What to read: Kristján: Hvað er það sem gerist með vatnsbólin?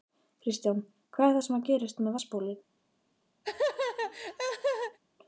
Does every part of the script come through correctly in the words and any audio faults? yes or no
no